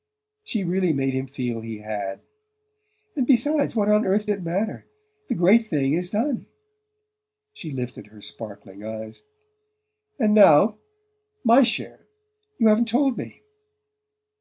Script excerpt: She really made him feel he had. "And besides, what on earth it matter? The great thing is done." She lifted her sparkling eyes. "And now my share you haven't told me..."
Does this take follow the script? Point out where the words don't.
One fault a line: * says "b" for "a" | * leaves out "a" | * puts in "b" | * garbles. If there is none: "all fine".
all fine